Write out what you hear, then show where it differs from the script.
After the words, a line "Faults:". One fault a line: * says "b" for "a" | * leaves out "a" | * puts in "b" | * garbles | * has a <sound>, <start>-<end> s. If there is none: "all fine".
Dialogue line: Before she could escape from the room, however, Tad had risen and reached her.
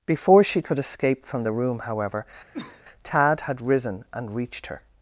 Before she could escape from the room, however, Tad had risen and reached her.
Faults:
* has a cough, 2.5-2.8 s